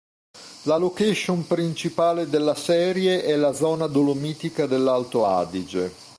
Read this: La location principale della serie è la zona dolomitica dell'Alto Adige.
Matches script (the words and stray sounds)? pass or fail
pass